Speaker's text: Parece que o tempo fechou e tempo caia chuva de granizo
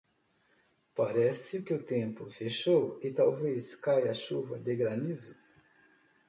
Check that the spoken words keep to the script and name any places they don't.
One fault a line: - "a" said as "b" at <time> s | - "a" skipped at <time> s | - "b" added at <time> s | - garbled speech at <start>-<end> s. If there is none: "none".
- "tempo" said as "talvez" at 3.1 s